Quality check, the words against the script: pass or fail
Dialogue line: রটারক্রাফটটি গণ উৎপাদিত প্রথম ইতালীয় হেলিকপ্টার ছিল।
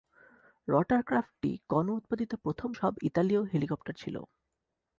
fail